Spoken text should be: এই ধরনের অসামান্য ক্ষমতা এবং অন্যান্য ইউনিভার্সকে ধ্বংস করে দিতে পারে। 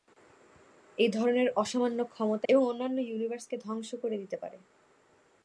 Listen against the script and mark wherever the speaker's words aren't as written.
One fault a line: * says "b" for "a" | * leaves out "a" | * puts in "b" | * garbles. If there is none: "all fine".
all fine